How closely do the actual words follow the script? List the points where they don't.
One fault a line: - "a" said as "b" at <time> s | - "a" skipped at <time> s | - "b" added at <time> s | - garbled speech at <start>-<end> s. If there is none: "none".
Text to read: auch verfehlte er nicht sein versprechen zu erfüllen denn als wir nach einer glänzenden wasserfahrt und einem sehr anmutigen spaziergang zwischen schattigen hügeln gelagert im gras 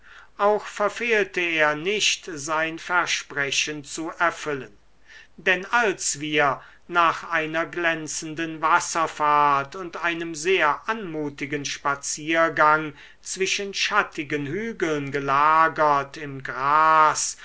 none